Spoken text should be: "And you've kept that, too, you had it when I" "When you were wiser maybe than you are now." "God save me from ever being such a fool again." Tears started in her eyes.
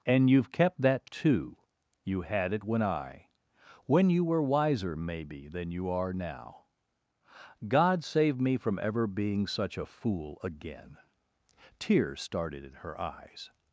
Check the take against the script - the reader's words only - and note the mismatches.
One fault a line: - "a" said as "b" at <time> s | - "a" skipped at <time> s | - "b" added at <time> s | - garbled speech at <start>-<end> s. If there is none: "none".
none